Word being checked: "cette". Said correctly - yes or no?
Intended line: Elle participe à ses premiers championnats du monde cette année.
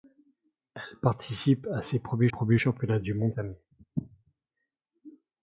no